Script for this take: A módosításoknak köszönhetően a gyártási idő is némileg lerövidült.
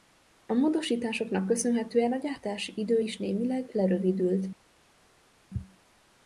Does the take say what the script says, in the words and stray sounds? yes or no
yes